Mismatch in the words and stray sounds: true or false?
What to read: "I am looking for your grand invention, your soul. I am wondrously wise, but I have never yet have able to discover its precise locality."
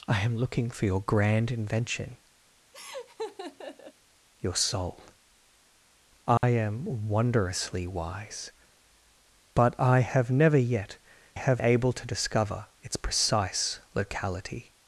true